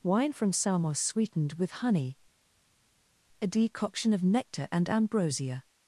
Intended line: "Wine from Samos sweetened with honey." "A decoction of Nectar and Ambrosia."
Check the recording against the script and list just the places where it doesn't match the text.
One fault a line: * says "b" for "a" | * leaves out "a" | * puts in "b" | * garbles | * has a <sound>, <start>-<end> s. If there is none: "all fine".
all fine